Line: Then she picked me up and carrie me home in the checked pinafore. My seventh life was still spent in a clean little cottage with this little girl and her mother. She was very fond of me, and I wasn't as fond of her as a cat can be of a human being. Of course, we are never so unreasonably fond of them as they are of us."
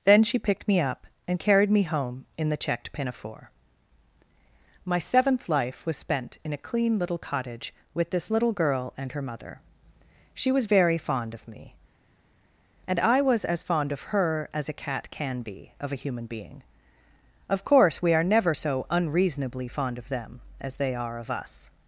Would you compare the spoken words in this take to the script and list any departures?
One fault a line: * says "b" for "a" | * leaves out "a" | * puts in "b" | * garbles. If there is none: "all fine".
* says "carried" for "carrie"
* leaves out "still"
* says "was" for "wasn't"